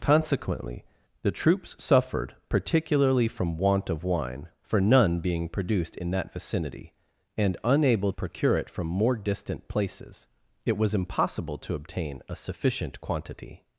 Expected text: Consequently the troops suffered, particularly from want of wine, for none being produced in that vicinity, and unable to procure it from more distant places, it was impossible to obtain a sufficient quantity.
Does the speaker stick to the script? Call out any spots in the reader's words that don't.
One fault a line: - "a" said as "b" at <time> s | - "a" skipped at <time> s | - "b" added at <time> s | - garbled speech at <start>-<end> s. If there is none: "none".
- "to" skipped at 8.1 s